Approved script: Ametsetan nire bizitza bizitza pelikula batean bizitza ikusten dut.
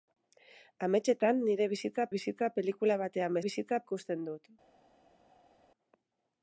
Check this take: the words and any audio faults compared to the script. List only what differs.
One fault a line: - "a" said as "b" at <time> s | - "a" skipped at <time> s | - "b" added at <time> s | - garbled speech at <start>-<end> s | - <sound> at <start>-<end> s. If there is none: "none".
none